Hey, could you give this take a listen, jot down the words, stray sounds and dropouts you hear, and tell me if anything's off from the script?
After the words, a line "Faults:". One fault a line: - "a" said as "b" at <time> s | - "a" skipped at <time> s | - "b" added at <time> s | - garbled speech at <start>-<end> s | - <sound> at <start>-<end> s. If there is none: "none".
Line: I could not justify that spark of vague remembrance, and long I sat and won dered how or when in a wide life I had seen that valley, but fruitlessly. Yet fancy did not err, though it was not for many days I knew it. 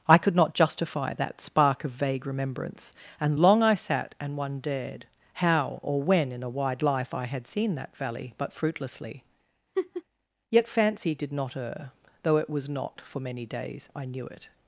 I could not justify that spark of vague remembrance, and long I sat and one dared how or when in a wide life I had seen that valley, but fruitlessly. Yet fancy did not err, though it was not for many days I knew it.
Faults:
- "won dered" said as "one dared" at 4.4 s
- laugh at 9.7-10.0 s